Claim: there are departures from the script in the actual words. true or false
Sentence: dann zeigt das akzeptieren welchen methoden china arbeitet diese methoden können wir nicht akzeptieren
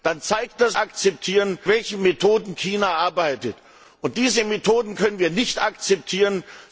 false